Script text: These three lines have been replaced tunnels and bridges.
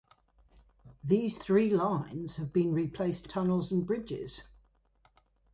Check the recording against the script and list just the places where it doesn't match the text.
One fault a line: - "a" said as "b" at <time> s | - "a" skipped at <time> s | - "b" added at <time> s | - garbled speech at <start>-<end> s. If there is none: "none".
none